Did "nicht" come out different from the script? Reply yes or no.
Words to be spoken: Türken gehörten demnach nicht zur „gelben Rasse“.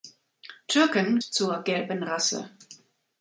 yes